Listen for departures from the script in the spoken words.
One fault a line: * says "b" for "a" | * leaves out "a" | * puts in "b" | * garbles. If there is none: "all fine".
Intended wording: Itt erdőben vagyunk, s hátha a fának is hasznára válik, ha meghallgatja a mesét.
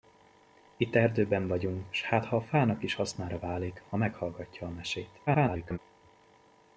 * garbles